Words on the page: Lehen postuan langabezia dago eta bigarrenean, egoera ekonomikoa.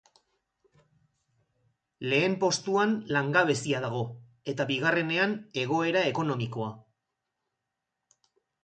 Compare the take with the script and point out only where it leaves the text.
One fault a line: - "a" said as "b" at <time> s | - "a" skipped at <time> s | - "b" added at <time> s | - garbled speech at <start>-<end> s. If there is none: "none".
none